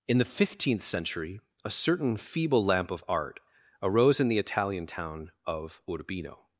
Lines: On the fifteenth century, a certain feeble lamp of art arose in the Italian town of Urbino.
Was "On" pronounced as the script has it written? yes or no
no